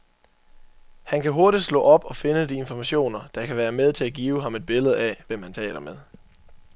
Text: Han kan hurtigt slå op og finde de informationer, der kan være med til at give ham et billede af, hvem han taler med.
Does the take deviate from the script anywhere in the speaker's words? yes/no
no